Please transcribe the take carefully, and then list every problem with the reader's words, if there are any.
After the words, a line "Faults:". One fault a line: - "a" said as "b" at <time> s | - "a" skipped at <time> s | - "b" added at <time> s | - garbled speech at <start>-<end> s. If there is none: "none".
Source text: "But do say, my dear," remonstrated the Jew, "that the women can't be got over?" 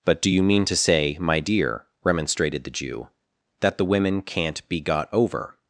"But do you mean to say, my dear," remonstrated the Jew, "that the women can't be got over?"
Faults:
- "you mean to" added at 0.3 s